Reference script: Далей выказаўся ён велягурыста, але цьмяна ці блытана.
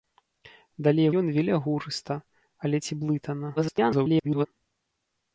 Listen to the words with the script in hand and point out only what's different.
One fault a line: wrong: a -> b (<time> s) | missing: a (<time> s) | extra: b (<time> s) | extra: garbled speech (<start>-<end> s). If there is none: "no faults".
missing: выказаўся (1.1 s)
missing: цьмяна (2.8 s)
extra: garbled speech (3.6-4.5 s)